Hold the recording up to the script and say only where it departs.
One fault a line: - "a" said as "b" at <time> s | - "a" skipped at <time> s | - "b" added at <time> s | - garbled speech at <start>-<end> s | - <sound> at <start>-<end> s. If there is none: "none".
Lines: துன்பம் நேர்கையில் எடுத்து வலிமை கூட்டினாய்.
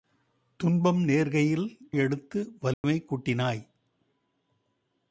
- dropout at 2.7-2.8 s